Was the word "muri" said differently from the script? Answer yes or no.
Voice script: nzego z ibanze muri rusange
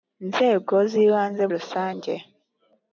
yes